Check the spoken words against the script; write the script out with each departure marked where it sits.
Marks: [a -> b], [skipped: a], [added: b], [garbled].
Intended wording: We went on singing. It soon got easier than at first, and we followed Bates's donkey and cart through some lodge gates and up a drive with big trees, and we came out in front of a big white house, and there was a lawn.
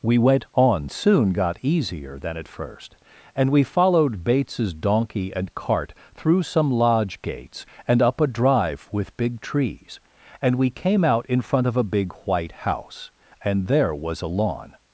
We went on [skipped: singing. It] soon got easier than at first, and we followed Bates's donkey and cart through some lodge gates and up a drive with big trees, and we came out in front of a big white house, and there was a lawn.